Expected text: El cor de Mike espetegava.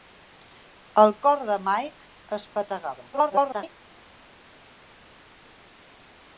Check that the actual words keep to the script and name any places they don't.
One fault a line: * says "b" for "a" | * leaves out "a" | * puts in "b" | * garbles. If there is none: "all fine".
* garbles